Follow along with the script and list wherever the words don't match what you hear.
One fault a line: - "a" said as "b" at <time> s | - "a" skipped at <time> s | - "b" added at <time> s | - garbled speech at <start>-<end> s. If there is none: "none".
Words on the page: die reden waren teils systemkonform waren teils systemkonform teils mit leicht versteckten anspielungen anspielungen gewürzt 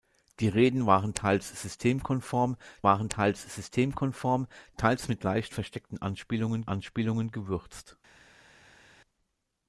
none